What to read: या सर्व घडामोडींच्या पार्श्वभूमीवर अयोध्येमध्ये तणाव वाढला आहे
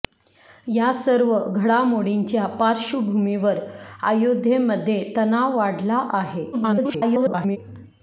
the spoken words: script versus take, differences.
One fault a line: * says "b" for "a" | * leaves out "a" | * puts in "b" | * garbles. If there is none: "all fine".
* garbles